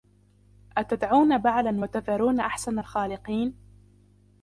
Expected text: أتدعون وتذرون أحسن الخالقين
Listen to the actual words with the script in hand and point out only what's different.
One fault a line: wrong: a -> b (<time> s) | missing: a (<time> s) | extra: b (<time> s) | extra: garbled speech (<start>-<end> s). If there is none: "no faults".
extra: بعلا (1.4 s)